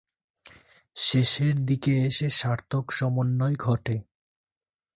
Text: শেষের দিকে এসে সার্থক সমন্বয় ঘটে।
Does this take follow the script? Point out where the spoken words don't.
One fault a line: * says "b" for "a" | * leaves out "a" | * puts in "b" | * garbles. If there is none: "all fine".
all fine